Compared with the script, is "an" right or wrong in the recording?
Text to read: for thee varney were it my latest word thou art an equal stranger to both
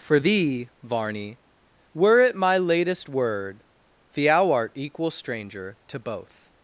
wrong